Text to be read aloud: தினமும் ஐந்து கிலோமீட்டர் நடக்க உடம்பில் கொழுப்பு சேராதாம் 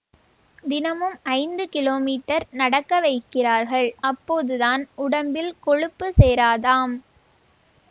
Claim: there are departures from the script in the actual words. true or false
true